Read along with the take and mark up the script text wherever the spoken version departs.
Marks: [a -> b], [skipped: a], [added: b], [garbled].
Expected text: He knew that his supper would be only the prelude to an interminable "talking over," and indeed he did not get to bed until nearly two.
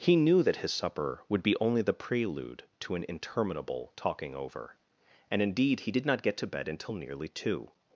He knew that his supper would be only the prelude to an interminable "talking over," and indeed he did not get to bed until nearly two.